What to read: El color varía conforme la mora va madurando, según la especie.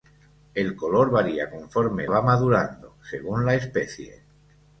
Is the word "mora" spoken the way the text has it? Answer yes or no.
no